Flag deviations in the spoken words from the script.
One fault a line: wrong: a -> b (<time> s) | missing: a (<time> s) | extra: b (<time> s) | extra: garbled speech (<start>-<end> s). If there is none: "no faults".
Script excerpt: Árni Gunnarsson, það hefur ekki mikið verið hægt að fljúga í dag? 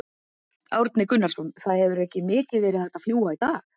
no faults